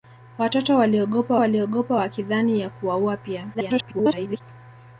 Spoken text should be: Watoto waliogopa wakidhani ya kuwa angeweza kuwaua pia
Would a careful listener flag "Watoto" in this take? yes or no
no